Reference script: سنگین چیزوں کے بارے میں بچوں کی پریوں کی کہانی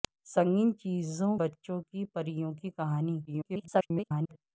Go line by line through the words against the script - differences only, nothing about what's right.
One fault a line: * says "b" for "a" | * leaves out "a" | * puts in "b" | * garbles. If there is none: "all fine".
* leaves out "کے بارے میں"
* garbles